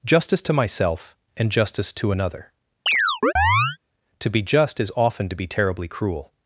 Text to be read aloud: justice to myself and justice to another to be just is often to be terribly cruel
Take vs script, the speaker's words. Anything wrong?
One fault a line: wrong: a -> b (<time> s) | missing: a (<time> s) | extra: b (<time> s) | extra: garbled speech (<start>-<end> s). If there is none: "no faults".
no faults